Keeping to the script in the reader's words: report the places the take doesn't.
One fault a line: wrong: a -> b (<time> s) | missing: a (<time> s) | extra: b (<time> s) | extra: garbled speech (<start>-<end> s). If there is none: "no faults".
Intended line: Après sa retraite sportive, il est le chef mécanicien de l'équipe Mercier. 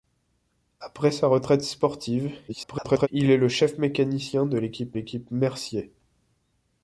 extra: garbled speech (2.5-3.1 s)
extra: l'équipe (4.9 s)